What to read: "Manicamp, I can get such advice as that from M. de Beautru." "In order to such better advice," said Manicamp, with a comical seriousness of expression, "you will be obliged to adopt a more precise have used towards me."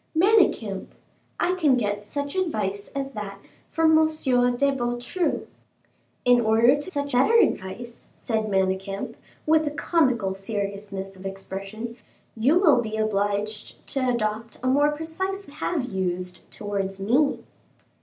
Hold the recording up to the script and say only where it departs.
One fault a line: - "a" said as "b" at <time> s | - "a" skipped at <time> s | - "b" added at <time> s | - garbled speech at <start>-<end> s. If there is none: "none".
none